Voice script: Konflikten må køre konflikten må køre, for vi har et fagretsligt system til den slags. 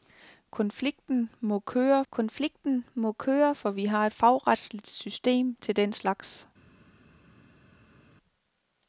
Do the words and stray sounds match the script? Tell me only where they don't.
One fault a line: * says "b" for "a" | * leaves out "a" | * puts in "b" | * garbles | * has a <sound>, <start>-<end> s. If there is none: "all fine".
all fine